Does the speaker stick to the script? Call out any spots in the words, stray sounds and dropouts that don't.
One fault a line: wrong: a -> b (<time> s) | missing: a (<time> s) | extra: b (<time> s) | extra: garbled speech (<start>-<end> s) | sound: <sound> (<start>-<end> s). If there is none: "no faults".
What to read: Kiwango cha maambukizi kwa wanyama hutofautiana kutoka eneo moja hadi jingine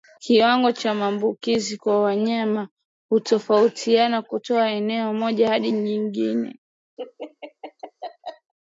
sound: laugh (7.0-8.5 s)